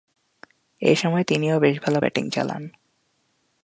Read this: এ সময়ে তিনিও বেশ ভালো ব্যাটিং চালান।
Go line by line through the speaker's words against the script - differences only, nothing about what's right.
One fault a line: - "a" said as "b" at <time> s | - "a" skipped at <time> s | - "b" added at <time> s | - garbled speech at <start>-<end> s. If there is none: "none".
none